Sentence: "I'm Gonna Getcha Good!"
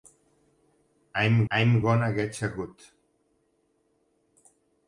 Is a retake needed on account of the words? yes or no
yes